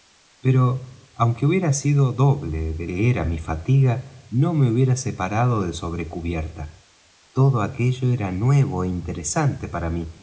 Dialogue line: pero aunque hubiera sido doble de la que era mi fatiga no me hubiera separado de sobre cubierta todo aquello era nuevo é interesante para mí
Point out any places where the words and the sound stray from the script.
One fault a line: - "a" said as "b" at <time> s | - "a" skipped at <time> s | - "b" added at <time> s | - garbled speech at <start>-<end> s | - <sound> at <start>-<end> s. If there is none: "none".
- "la" skipped at 2.9 s